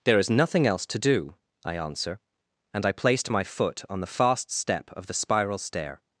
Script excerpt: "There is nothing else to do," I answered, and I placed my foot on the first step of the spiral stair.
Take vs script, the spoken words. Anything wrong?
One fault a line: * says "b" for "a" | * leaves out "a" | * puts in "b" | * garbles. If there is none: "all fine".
* says "answer" for "answered"
* says "fast" for "first"